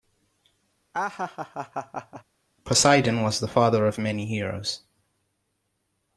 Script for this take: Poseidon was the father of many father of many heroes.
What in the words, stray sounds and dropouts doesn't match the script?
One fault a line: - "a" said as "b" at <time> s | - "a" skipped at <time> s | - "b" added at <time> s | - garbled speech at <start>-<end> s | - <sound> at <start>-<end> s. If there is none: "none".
- laugh at 0.9-2.2 s
- "father of many" skipped at 4.2 s